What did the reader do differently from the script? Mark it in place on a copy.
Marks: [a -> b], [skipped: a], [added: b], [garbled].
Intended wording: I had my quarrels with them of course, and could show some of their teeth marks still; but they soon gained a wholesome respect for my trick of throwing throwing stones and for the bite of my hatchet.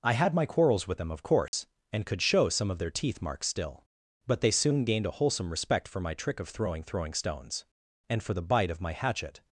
I had my quarrels with them of course, and could show some of their teeth marks still; but they soon gained a wholesome respect for my trick of throwing throwing stones and for the bite of my hatchet.